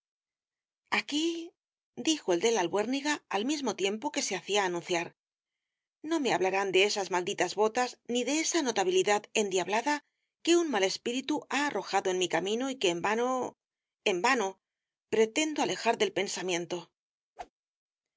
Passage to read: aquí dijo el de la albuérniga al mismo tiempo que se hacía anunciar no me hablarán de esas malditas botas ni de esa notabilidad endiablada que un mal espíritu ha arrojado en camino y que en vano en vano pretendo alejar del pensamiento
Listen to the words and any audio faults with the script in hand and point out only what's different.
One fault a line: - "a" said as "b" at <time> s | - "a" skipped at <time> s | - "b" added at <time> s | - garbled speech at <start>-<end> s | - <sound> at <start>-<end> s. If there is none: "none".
- "mi" added at 12.2 s
- whoosh at 17.4-17.5 s